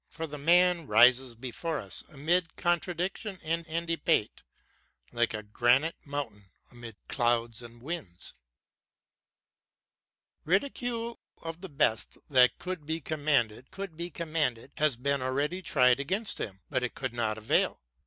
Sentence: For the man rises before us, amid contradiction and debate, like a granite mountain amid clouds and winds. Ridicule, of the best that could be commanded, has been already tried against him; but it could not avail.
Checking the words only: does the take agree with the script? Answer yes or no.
no